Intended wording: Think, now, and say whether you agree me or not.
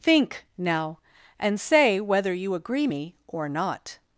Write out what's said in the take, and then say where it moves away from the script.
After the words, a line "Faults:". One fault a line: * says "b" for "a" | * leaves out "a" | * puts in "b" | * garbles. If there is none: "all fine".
Think, now, and say whether you agree me or not.
Faults:
all fine